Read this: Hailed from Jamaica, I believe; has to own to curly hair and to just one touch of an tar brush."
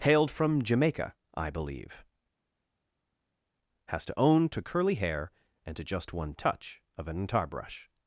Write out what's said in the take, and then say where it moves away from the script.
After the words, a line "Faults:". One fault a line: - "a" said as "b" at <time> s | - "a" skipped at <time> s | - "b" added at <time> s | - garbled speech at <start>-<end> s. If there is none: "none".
Hailed from Jamaica, I believe; has to own to curly hair and to just one touch of an tar brush."
Faults:
none